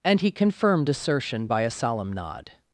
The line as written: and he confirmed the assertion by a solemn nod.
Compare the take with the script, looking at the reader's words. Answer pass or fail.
fail